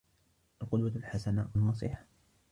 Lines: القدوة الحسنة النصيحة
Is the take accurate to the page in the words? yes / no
yes